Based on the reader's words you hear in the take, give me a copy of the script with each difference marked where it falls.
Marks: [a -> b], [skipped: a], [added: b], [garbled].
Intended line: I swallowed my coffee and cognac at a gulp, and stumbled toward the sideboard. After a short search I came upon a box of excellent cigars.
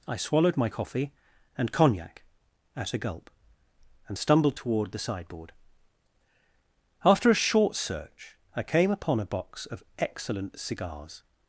I swallowed my coffee and cognac at a gulp, and stumbled toward the sideboard. After a short search I came upon a box of excellent cigars.